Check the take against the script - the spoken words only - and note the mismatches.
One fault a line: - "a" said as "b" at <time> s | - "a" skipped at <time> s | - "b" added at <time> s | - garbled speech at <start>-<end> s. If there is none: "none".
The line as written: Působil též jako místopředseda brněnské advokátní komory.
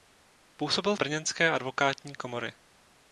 - "též jako místopředseda" skipped at 1.0 s